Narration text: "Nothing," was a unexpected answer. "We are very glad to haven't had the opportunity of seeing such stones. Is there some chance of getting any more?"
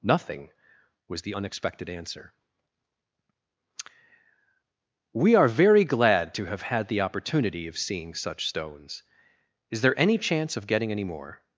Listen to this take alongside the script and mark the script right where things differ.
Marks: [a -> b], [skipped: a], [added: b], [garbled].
"Nothing," was [a -> the] unexpected answer. "We are very glad to [haven't -> have] had the opportunity of seeing such stones. Is there [some -> any] chance of getting any more?"